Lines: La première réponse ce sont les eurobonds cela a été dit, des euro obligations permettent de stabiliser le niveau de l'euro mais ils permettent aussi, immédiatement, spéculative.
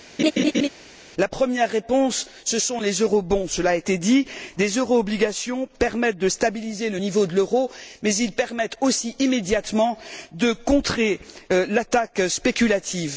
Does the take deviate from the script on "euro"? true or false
false